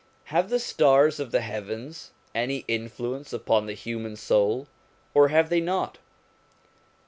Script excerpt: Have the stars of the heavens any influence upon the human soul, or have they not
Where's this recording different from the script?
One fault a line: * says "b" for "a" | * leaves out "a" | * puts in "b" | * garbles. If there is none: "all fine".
all fine